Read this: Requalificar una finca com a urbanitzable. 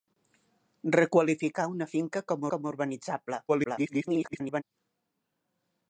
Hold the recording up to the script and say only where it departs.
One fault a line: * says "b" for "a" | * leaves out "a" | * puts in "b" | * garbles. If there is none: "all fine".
* puts in "com"
* garbles